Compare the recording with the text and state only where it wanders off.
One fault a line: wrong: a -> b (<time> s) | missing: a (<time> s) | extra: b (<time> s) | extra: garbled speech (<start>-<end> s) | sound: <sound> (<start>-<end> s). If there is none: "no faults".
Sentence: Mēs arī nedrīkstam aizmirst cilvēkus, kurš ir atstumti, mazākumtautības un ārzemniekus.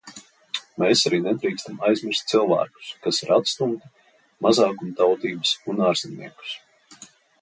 wrong: kurš -> kas (3.0 s)